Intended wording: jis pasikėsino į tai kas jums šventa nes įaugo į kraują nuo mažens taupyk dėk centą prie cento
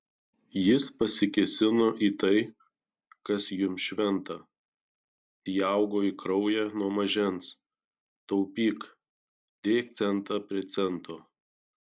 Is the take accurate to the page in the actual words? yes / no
no